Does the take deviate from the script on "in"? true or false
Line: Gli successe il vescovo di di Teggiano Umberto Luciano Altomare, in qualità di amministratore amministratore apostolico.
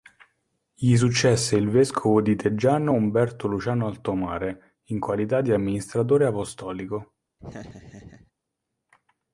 false